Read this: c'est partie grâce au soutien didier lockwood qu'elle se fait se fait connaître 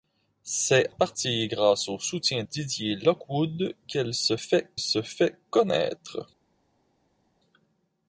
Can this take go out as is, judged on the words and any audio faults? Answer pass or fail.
pass